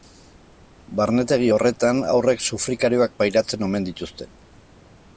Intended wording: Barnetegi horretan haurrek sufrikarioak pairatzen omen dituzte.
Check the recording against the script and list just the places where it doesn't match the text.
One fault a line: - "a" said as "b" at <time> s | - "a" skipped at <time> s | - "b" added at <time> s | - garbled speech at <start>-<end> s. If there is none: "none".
none